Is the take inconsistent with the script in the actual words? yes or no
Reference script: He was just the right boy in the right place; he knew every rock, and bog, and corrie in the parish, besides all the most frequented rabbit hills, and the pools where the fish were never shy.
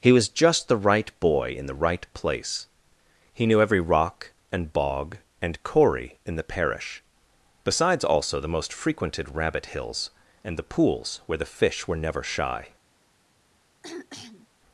yes